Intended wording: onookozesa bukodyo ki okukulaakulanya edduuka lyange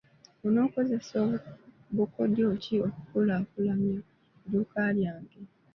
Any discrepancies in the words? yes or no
no